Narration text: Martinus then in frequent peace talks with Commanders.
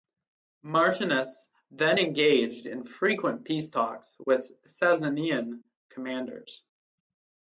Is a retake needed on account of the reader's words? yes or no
yes